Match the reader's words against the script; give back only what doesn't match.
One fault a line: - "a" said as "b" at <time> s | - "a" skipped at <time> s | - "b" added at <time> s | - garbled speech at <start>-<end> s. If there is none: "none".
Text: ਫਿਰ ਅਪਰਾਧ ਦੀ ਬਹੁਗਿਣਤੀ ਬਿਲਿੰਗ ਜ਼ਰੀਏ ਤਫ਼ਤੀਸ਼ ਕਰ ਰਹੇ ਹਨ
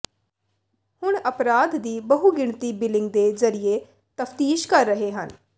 - "ਫਿਰ" said as "ਹੁਣ" at 1.0 s
- "ਦੇ" added at 3.1 s